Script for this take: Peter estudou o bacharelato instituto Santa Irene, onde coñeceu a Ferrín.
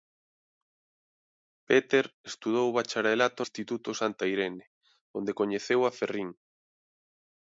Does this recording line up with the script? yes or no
yes